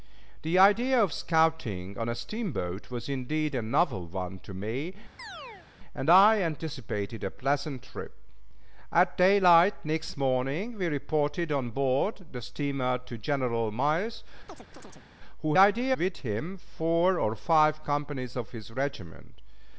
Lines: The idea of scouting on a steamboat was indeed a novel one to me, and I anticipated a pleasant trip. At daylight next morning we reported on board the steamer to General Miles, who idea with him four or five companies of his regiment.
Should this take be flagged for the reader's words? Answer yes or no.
no